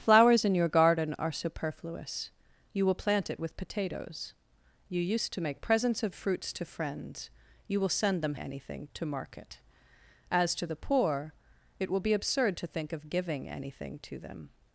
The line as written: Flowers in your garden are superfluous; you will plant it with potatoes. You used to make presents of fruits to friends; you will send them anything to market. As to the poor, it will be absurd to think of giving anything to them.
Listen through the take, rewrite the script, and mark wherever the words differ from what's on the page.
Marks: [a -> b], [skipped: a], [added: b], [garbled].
Flowers in your garden are superfluous; you will plant it with potatoes. You used to make presents of fruits to friends; you will send them anything to market. As to the poor, it will be absurd to think of giving anything to them.